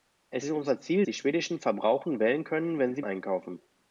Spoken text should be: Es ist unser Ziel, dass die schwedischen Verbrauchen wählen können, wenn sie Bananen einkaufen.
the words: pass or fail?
fail